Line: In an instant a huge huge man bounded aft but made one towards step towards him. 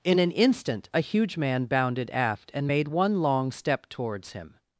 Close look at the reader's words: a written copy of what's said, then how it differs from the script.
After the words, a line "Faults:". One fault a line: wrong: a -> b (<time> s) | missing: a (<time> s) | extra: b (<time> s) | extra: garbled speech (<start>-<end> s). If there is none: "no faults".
In an instant a huge man bounded aft and made one long step towards him.
Faults:
missing: huge (1.4 s)
wrong: but -> and (2.5 s)
wrong: towards -> long (3.2 s)